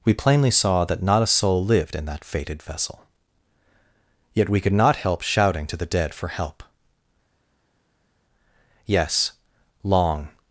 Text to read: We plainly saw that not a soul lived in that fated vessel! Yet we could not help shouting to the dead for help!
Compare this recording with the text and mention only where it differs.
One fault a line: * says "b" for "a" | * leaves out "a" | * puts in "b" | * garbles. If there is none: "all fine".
* puts in "Yes long"